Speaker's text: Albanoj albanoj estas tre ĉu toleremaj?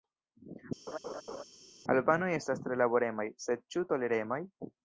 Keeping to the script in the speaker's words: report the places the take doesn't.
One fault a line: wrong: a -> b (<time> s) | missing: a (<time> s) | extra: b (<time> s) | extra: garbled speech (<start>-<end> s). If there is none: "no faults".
missing: albanoj (2.3 s)
extra: laboremaj sed (2.8 s)